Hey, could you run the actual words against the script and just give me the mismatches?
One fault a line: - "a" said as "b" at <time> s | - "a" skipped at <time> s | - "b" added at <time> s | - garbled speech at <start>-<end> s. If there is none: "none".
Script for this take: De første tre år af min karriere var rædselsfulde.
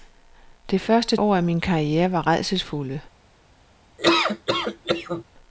- "tre" skipped at 1.2 s